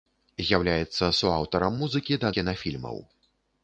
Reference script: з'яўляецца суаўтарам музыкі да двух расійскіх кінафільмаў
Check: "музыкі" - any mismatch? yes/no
no